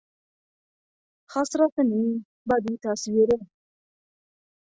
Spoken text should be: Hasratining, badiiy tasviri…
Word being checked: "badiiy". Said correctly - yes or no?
yes